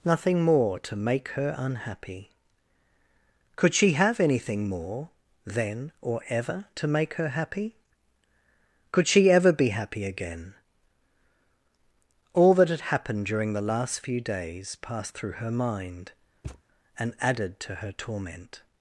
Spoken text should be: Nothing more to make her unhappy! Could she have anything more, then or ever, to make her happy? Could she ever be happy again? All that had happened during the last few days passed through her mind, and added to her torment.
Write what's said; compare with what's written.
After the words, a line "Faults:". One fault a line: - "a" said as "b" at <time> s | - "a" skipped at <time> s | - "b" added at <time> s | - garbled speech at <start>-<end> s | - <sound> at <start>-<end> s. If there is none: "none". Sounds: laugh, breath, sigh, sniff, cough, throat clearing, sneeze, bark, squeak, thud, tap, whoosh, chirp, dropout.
Nothing more to make her unhappy! Could she have anything more, then or ever, to make her happy? Could she ever be happy again? All that had happened during the last few days passed through her mind, and added to her torment.
Faults:
- thud at 16.4-16.6 s